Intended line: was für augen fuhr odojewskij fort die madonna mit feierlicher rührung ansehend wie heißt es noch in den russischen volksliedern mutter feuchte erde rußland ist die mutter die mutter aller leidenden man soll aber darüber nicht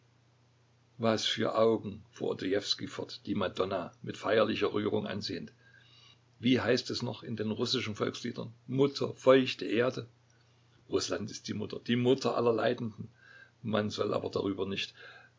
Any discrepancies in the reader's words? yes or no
no